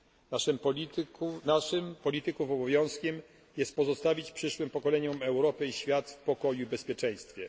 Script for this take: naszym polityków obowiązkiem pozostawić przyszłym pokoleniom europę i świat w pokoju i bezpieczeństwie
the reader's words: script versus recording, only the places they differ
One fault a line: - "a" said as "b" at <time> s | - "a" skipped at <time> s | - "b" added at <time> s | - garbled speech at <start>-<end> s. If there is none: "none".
- "jest" added at 3.6 s